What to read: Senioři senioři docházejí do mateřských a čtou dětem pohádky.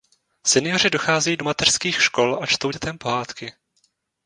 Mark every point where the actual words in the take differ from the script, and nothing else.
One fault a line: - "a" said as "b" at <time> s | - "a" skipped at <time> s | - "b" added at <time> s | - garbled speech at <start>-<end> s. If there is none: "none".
- "senioři" skipped at 0.9 s
- "škol" added at 2.0 s